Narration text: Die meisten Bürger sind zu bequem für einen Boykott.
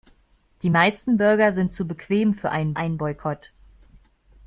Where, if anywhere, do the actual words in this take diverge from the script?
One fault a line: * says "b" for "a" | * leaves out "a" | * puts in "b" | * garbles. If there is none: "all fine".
* puts in "einen"